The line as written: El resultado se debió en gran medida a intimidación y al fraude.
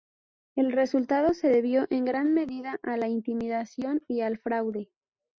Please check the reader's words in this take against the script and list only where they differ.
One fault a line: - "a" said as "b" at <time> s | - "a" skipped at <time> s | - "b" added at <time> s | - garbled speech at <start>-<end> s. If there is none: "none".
- "la" added at 3.0 s